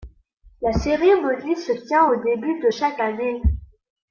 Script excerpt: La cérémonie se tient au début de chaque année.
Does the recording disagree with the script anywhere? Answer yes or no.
no